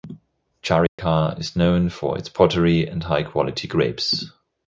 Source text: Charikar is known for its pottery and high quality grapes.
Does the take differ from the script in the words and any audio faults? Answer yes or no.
yes